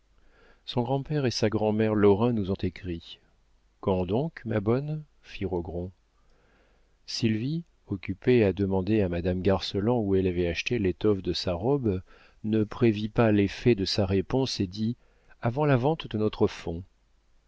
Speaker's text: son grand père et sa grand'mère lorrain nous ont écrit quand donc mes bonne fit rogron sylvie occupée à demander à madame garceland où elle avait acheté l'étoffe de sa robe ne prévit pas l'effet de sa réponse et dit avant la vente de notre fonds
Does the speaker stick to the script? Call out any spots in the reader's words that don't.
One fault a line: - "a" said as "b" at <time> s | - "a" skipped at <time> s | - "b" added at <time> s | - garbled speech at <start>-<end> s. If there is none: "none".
- "mes" said as "ma" at 4.5 s